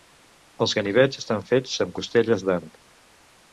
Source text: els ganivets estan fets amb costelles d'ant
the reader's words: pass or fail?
pass